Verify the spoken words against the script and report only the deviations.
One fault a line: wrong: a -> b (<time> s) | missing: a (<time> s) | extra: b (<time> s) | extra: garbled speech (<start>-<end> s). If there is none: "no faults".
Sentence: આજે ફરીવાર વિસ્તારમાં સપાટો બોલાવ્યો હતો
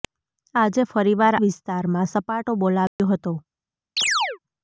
no faults